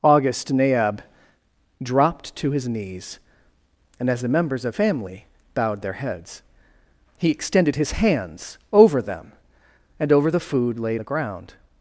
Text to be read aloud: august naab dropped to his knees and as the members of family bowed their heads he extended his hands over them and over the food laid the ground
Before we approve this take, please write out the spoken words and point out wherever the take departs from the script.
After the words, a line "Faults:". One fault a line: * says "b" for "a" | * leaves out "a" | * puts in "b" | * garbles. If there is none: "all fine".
august naab dropped to his knees and as the members of family bowed their heads he extended his hands over them and over the food laid the ground
Faults:
all fine